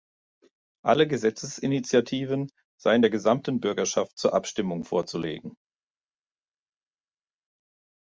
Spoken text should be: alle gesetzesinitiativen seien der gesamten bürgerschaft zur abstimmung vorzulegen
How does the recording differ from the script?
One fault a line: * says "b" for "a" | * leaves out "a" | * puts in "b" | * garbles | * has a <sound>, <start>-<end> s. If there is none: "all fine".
all fine